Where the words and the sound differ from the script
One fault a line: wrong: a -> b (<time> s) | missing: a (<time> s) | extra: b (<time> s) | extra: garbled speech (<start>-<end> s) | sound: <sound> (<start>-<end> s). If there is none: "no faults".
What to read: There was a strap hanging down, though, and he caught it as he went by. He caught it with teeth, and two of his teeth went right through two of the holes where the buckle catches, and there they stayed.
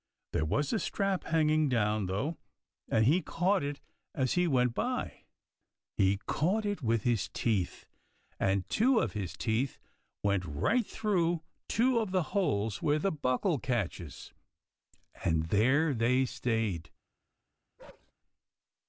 extra: his (7.0 s)
sound: bark (17.8-18.1 s)